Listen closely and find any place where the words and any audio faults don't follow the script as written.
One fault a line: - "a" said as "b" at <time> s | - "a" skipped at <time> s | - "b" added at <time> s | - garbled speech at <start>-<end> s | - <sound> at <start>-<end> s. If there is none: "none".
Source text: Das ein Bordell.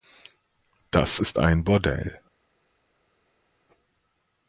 - "ist" added at 1.2 s